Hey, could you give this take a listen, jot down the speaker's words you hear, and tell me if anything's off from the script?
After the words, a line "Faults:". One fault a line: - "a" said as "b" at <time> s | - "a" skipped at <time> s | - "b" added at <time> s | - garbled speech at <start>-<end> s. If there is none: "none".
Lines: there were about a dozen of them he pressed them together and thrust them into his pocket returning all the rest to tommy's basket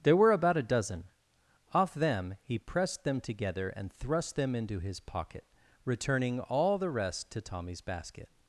there were about a dozen off them he pressed them together and thrust them into his pocket returning all the rest to tommy's basket
Faults:
- "of" said as "off" at 1.7 s